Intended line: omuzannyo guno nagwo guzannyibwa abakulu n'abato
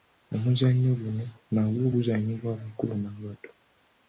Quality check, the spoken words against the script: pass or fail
pass